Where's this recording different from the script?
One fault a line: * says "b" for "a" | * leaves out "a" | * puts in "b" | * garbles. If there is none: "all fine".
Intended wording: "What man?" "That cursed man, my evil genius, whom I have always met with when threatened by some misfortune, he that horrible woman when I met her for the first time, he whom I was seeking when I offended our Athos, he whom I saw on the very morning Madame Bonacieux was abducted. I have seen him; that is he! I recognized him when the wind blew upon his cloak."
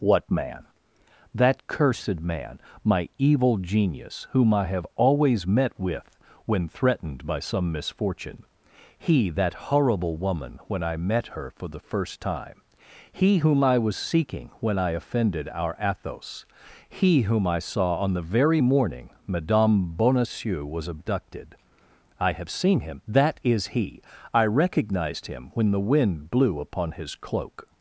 all fine